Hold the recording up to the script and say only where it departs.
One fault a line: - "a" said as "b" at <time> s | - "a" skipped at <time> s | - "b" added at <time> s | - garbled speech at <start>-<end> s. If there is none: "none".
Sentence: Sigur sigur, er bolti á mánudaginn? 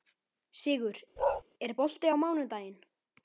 - "sigur" skipped at 1.0 s